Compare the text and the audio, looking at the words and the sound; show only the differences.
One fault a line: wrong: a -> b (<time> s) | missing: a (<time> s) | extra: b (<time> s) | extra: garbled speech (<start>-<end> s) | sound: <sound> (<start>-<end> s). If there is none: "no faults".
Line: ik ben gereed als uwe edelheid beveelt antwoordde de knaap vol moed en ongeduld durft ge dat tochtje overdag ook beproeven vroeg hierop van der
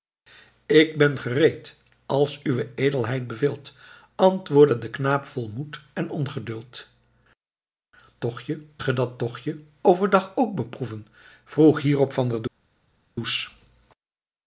wrong: durft -> tochtje (8.2 s)